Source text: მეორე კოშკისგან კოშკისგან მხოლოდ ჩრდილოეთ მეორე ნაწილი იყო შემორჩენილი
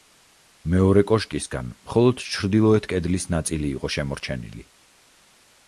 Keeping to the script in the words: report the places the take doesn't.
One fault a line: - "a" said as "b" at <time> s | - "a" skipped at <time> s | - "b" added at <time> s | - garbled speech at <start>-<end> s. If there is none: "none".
- "კოშკისგან" skipped at 1.7 s
- "მეორე" said as "კედლის" at 3.0 s